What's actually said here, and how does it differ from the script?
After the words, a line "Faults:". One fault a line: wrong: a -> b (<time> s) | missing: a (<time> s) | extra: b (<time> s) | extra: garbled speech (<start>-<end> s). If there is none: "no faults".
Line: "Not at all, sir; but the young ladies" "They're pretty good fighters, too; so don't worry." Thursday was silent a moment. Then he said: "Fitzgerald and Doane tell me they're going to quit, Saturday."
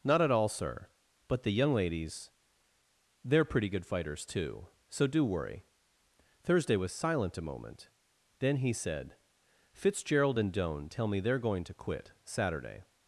"Not at all, sir; but the young ladies" "They're pretty good fighters, too; so do worry." Thursday was silent a moment. Then he said: "Fitzgerald and Doane tell me they're going to quit, Saturday."
Faults:
wrong: don't -> do (5.1 s)